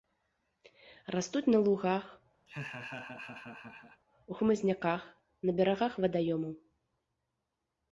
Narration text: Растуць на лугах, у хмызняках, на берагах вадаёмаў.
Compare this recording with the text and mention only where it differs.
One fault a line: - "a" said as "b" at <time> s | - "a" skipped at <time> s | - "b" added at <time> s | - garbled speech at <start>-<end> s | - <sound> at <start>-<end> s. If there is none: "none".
- laugh at 2.5-4.0 s